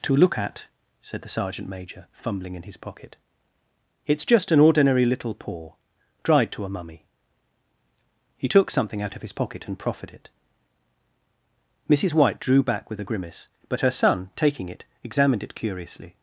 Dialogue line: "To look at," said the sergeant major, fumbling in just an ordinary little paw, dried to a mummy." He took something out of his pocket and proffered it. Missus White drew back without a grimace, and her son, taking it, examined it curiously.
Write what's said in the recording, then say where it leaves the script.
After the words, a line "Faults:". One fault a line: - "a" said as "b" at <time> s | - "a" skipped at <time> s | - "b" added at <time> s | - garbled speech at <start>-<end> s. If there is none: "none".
"To look at," said the sergeant major, fumbling in his pocket, "it's just an ordinary little paw, dried to a mummy." He took something out of his pocket and proffered it. Missus White drew back with a grimace, but her son, taking it, examined it curiously.
Faults:
- "his pocket it's" added at 2.6 s
- "without" said as "with" at 12.9 s
- "and" said as "but" at 13.7 s